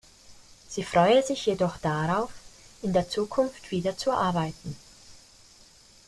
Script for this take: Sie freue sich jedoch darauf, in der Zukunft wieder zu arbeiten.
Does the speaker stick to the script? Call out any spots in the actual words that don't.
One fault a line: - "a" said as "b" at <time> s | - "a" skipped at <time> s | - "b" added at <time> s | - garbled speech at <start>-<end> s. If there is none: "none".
none